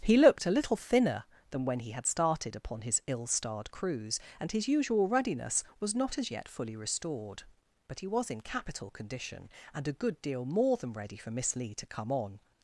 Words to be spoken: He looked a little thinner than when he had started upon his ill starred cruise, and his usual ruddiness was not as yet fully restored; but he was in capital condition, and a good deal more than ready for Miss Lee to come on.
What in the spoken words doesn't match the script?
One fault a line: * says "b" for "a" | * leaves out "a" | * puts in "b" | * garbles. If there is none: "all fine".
all fine